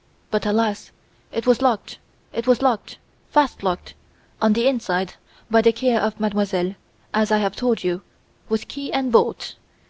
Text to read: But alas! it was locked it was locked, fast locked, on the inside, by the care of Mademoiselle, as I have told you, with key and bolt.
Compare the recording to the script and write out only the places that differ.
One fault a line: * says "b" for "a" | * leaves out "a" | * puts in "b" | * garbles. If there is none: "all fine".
all fine